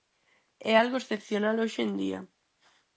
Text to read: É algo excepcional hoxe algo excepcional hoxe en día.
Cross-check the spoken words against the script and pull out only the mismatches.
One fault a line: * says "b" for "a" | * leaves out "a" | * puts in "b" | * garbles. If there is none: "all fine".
* leaves out "algo excepcional hoxe"